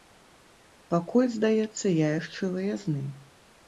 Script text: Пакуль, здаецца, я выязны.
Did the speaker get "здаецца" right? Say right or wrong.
right